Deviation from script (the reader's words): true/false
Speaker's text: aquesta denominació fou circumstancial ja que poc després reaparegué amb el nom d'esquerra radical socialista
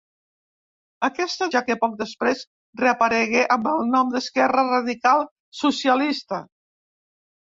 true